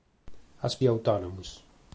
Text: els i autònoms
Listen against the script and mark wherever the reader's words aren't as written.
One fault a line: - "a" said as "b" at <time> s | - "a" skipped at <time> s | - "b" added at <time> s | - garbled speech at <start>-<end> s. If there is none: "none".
none